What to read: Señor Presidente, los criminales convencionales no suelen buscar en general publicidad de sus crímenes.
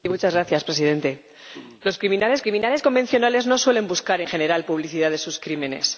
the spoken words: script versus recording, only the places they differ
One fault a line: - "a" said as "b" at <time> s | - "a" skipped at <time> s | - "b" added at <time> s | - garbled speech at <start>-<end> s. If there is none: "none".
- "criminales" added at 2.4 s
- "en" skipped at 4.2 s